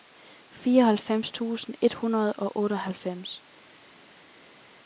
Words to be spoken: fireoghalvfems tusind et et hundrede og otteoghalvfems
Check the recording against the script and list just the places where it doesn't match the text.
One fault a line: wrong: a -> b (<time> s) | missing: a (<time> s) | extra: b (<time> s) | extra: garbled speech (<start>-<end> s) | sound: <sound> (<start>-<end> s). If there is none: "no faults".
missing: et (1.9 s)